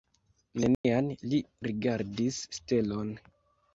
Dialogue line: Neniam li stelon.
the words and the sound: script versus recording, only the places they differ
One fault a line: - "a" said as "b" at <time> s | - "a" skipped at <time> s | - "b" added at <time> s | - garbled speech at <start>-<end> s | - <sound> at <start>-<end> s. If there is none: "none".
- dropout at 0.7-0.8 s
- "rigardis" added at 1.7 s